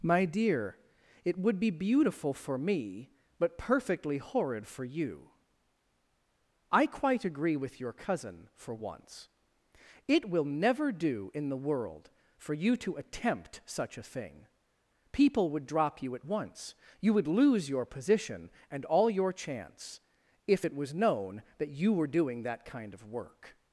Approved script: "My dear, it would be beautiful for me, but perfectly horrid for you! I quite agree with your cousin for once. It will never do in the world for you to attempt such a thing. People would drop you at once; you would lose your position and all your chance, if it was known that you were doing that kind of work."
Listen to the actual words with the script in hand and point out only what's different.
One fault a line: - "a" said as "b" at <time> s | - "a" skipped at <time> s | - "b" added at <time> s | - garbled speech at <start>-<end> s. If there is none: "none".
none